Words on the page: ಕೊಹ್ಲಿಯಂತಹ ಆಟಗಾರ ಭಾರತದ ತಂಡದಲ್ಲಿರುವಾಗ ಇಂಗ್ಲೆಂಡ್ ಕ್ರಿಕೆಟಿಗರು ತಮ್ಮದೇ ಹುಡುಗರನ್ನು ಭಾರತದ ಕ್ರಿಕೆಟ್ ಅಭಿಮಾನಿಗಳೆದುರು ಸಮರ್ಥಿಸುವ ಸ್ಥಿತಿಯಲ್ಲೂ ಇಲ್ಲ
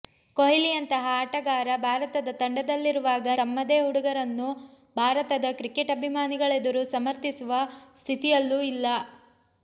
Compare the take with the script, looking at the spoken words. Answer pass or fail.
fail